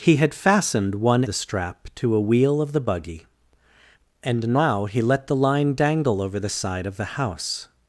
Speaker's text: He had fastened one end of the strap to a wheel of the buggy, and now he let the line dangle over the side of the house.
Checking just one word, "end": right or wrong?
wrong